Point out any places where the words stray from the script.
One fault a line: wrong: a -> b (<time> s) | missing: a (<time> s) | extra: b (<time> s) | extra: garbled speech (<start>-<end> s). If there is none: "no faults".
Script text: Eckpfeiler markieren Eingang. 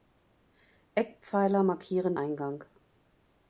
no faults